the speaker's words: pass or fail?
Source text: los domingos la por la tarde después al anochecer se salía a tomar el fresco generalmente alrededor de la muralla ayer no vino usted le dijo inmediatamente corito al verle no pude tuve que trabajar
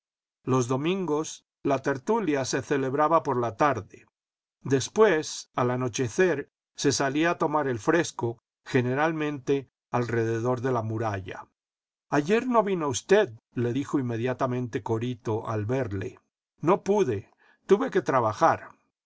fail